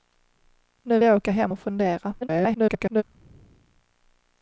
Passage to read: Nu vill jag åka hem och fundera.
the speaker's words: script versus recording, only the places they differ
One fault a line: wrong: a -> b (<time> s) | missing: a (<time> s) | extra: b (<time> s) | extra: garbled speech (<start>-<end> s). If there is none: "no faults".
missing: vill (1.0 s)
extra: garbled speech (2.2-3.0 s)